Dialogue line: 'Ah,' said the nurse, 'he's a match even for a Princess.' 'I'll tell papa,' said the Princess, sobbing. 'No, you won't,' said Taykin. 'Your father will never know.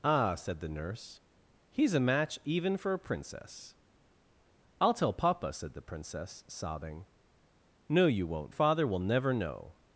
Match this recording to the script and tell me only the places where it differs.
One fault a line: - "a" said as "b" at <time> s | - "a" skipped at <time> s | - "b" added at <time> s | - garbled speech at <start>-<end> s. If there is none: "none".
- "said Taykin Your" skipped at 8.6 s